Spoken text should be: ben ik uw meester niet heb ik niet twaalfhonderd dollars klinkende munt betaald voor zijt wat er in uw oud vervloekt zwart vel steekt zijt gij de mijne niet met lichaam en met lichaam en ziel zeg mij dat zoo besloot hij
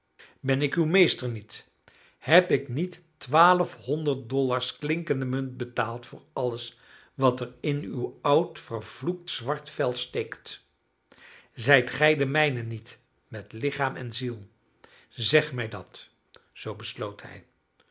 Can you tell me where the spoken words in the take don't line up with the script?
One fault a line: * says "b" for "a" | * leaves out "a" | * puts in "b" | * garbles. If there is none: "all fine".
* says "alles" for "zijt"
* leaves out "met lichaam en"